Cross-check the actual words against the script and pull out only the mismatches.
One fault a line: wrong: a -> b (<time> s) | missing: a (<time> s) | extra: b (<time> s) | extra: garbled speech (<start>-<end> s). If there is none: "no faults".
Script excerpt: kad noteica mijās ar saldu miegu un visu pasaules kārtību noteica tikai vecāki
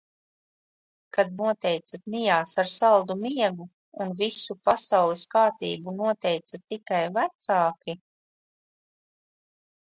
no faults